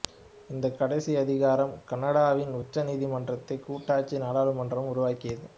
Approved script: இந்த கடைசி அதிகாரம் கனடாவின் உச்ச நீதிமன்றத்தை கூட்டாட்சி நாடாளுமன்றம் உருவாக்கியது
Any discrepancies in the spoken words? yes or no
no